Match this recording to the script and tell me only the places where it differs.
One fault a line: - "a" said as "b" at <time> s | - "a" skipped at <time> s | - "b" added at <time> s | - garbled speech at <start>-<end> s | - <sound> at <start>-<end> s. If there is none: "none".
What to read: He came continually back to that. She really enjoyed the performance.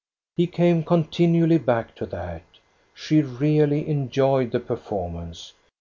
none